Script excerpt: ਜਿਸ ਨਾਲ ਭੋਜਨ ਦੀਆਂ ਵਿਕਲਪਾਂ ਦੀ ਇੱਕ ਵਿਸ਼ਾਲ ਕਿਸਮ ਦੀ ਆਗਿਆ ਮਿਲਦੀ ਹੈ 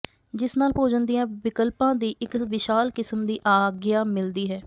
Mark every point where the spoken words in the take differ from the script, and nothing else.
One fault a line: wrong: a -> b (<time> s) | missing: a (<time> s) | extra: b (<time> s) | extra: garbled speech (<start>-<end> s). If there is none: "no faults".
no faults